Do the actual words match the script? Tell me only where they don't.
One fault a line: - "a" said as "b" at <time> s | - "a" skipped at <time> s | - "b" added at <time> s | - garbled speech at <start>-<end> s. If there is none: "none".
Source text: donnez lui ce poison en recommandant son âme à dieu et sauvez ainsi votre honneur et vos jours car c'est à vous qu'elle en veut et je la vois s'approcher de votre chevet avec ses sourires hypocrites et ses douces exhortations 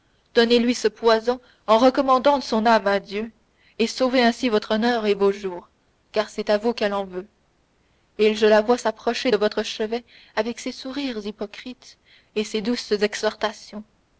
none